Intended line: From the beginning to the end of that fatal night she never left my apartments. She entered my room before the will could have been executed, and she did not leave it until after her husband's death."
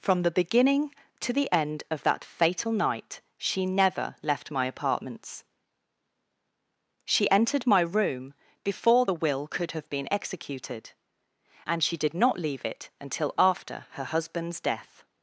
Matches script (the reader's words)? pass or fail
pass